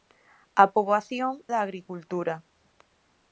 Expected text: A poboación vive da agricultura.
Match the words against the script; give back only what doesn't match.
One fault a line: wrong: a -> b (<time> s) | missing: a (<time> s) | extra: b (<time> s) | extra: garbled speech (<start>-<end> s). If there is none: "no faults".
missing: vive (1.3 s)